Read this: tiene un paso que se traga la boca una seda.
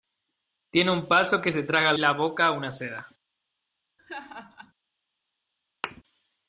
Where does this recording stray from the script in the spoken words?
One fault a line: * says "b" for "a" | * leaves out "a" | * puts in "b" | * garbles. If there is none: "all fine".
all fine